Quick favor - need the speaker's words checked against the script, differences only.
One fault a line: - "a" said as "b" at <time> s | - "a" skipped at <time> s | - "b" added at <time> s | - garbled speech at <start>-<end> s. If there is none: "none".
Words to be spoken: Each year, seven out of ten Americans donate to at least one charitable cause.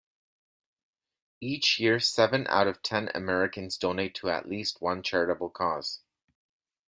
none